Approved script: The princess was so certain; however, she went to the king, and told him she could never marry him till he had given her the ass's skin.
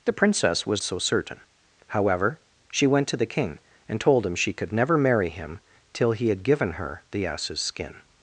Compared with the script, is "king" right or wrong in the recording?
right